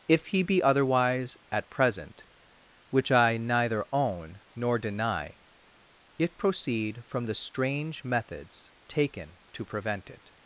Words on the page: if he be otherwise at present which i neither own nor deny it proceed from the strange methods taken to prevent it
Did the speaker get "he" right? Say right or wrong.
right